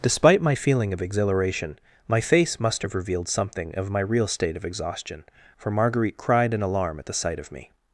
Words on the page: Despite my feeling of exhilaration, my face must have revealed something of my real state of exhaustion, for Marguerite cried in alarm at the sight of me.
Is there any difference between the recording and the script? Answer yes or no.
no